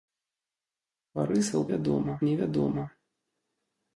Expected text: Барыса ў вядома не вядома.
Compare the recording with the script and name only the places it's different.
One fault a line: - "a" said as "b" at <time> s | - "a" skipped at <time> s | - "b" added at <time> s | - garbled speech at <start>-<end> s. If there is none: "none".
none